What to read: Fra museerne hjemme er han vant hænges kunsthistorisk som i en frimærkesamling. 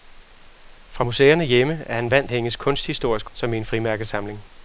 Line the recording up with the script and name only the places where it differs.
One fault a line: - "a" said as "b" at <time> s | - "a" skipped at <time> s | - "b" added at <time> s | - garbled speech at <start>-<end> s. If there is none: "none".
none